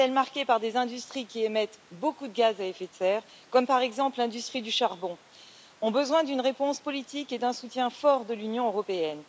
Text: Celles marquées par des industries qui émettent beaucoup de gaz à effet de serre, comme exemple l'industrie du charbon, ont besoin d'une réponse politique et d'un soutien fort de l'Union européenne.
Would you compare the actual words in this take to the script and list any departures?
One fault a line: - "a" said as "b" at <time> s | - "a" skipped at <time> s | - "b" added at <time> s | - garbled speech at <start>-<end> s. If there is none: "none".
- "par" added at 3.7 s